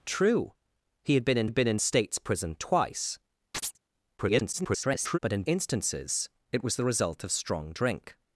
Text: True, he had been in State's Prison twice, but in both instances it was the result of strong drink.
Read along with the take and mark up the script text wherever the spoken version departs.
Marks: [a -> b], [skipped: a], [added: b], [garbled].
True, he had been in [added: had been in] State's Prison twice, [garbled] but in [skipped: both] instances it was the result of strong drink.